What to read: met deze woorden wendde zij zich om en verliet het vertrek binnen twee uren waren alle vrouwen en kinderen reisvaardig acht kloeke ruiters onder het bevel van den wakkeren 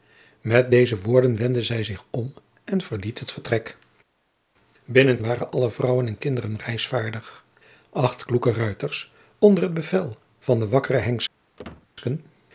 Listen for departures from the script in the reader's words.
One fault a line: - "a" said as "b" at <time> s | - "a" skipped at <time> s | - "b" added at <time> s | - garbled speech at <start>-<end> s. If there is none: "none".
- "twee uren" skipped at 5.2 s